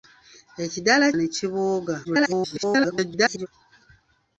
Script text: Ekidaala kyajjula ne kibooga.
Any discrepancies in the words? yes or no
yes